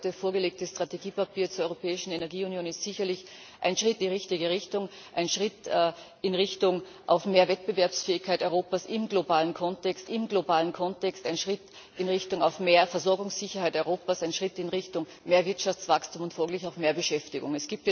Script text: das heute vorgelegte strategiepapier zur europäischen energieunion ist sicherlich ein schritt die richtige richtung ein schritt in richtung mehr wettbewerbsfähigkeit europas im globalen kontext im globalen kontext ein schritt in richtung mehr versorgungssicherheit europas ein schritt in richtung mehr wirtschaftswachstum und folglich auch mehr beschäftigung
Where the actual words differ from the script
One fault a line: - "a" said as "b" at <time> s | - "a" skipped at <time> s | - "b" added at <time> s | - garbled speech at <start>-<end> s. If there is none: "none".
none